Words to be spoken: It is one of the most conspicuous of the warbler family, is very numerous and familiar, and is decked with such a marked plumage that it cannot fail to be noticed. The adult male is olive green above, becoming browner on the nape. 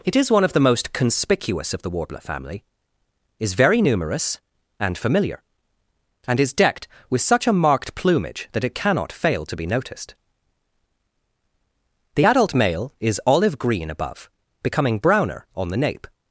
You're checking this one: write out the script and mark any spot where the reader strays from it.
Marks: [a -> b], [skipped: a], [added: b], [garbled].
It is one of the most conspicuous of the warbler family, is very numerous and familiar, and is decked with such a marked plumage that it cannot fail to be noticed. The adult male is olive green above, becoming browner on the nape.